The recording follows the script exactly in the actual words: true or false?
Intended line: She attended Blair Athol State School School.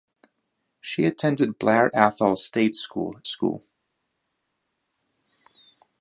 true